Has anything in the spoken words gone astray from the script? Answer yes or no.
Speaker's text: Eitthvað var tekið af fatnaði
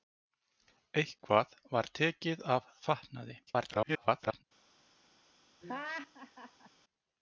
yes